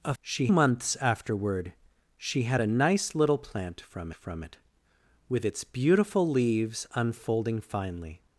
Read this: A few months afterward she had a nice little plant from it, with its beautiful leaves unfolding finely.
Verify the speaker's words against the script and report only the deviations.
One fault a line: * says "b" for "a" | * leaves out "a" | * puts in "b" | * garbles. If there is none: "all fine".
* says "she" for "few"
* puts in "from"